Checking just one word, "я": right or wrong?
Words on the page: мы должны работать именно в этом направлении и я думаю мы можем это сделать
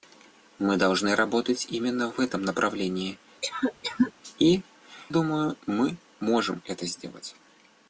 wrong